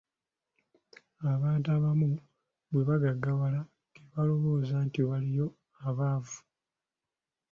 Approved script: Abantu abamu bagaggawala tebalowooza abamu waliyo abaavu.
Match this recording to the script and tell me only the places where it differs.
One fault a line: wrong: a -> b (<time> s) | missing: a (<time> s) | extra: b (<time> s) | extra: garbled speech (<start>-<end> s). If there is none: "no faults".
extra: bwe (2.7 s)
wrong: abamu -> nti (4.9 s)